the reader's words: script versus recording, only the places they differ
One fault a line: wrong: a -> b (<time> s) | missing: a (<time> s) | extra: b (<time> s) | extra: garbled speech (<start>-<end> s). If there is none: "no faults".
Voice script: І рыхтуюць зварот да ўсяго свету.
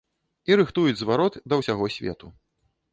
no faults